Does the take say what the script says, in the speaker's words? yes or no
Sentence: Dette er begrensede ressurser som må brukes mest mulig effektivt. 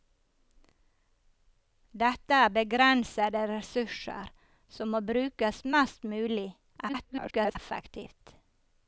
no